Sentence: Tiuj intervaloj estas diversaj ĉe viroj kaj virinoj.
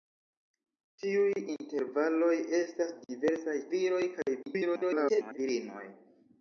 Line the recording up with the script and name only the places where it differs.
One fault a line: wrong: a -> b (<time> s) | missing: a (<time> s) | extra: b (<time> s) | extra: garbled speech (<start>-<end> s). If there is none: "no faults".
missing: ĉe (3.6 s)
extra: garbled speech (4.4-5.4 s)